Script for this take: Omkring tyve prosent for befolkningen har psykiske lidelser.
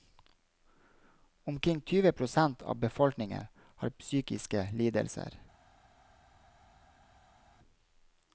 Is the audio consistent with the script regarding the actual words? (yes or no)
no